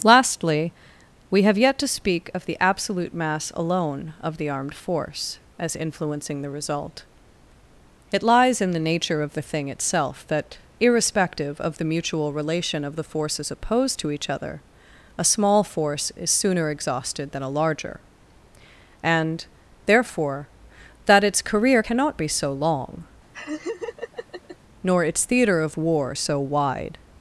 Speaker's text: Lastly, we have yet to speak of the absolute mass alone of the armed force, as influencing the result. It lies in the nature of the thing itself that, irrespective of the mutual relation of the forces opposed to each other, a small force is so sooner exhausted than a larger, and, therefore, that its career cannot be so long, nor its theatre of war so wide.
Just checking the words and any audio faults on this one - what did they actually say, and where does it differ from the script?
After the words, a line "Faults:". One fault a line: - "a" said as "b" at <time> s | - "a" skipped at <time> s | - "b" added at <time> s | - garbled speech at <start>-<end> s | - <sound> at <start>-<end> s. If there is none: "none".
Lastly, we have yet to speak of the absolute mass alone of the armed force, as influencing the result. It lies in the nature of the thing itself that, irrespective of the mutual relation of the forces opposed to each other, a small force is sooner exhausted than a larger, and, therefore, that its career cannot be so long, nor its theatre of war so wide.
Faults:
- "so" skipped at 16.3 s
- laugh at 23.3-24.6 s